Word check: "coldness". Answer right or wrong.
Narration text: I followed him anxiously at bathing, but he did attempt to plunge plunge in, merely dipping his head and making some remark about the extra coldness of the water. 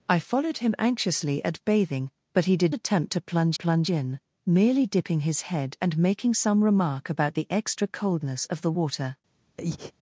right